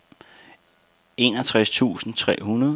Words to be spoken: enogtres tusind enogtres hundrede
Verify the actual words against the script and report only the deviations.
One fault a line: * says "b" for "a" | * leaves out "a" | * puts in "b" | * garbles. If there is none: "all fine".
* says "tre" for "enogtres"